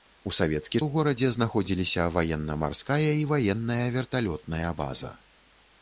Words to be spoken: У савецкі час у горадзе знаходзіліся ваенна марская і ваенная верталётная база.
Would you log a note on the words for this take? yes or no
yes